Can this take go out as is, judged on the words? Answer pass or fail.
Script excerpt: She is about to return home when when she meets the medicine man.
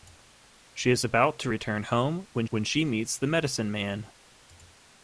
pass